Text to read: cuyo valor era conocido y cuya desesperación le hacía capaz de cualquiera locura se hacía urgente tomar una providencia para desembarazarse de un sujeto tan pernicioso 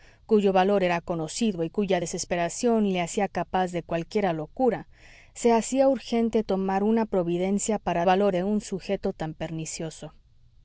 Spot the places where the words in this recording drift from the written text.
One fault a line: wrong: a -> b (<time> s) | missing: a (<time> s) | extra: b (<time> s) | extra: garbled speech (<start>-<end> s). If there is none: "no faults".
wrong: desembarazarse -> valor (8.0 s)